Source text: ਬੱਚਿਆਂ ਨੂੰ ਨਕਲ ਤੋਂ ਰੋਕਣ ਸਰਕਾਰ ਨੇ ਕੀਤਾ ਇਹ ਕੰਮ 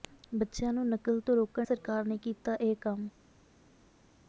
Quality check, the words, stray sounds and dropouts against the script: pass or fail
pass